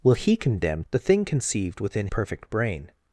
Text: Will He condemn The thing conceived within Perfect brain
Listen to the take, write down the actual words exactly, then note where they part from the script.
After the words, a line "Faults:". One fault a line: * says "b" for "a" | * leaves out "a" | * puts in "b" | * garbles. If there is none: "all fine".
Will He condemn The thing conceived within Perfect brain
Faults:
all fine